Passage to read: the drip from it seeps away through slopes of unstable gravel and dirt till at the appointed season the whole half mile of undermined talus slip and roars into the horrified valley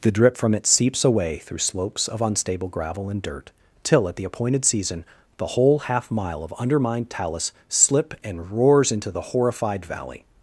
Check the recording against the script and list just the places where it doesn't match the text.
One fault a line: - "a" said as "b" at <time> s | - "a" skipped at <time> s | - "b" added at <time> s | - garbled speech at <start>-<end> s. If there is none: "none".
none